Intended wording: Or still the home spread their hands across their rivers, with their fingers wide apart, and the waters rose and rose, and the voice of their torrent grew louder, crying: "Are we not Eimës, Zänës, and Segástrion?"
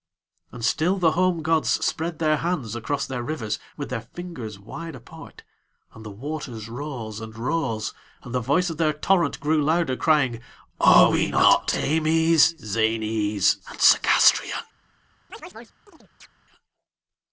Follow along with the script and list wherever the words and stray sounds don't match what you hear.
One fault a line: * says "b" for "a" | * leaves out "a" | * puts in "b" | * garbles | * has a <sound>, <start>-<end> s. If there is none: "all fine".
* says "And" for "Or"
* puts in "gods"
* has a chirp, 15.3-16.3 s